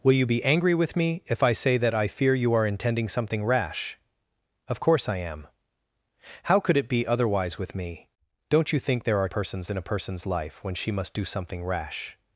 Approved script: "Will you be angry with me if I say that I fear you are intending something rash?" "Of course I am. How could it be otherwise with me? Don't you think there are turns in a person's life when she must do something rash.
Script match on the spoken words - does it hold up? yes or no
no